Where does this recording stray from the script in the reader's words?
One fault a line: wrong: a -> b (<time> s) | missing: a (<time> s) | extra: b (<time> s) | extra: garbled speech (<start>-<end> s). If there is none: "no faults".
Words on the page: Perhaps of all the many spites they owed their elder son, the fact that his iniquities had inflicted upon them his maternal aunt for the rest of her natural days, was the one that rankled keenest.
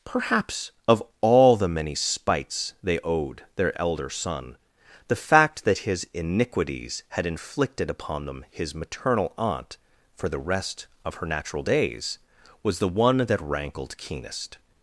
no faults